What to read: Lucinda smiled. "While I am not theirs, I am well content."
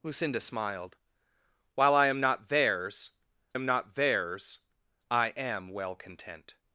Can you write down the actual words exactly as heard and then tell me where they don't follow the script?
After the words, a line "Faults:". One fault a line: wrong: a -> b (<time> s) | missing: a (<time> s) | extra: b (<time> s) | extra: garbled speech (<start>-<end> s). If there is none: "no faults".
Lucinda smiled. "While I am not theirs am not theirs, I am well content."
Faults:
extra: am not theirs (3.5 s)